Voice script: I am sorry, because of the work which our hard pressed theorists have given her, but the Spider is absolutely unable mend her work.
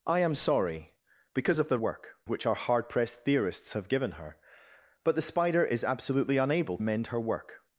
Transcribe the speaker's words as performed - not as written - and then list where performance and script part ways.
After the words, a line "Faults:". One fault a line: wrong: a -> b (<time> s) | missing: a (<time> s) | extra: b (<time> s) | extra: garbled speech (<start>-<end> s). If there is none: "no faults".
I am sorry, because of the work which our hard pressed theorists have given her, but the Spider is absolutely unable mend her work.
Faults:
no faults